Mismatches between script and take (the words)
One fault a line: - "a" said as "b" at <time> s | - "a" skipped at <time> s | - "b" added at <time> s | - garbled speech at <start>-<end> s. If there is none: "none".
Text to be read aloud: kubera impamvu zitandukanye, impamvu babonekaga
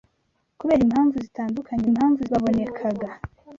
none